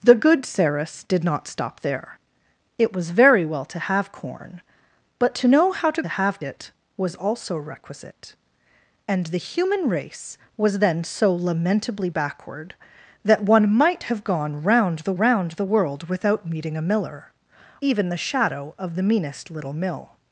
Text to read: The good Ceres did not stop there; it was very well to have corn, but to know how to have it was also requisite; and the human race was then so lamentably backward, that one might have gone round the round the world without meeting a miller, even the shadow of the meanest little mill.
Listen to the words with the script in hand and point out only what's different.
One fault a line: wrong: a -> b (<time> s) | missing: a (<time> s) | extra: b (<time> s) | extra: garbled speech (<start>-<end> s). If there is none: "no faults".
no faults